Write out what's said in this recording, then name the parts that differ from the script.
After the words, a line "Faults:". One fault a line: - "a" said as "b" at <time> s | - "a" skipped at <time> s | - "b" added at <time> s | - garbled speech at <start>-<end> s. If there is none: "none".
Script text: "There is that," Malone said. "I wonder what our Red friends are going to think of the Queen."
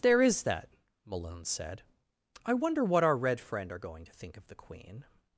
"There is that," Malone said. "I wonder what our Red friend are going to think of the Queen."
Faults:
- "friends" said as "friend" at 3.4 s